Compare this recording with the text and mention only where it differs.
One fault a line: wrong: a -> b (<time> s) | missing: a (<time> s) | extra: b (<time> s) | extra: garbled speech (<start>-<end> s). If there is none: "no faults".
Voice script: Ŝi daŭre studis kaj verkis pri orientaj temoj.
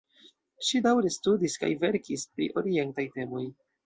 no faults